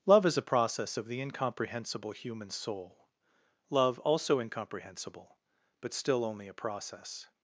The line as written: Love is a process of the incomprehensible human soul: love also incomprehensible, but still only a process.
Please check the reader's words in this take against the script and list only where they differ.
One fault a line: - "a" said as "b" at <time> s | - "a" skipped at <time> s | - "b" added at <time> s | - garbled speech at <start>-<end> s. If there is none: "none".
none